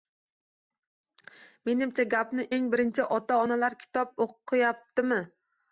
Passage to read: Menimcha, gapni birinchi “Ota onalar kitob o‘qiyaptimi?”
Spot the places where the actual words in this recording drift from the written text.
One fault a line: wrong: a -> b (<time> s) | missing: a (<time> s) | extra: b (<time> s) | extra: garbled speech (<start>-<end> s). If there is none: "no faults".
extra: eng (2.6 s)